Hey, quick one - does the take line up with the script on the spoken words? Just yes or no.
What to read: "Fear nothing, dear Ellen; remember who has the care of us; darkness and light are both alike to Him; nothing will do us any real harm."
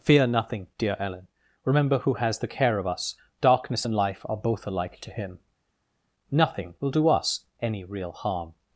no